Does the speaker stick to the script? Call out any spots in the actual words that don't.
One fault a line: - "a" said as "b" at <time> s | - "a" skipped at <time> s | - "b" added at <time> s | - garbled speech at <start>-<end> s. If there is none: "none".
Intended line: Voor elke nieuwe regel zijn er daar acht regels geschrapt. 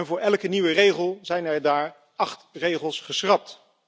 none